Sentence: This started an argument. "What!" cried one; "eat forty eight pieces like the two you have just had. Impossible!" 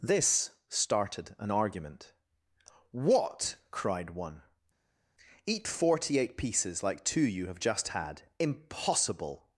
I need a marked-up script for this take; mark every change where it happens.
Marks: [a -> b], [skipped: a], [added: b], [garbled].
This started an argument. "What!" cried one; "eat forty eight pieces like [skipped: the] two you have just had. Impossible!"